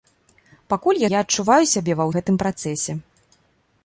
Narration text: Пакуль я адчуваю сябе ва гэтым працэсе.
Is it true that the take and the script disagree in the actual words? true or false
false